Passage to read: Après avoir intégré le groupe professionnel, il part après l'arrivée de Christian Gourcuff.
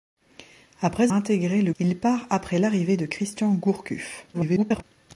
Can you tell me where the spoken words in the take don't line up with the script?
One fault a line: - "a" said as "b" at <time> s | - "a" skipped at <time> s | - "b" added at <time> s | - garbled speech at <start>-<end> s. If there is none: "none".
- "avoir" skipped at 1.1 s
- "groupe professionnel" skipped at 1.7 s
- garbled speech at 4.3-4.8 s